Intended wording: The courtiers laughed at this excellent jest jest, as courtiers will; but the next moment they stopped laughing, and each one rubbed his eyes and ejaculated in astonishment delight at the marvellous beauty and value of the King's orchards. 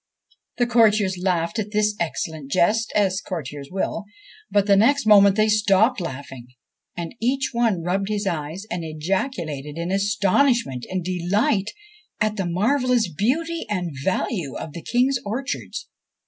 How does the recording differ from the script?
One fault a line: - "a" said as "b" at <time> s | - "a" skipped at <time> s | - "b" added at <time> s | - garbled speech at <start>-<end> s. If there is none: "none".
- "jest" skipped at 2.9 s
- "and" added at 10.9 s